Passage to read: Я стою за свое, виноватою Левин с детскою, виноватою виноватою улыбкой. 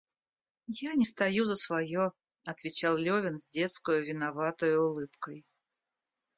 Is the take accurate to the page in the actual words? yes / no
no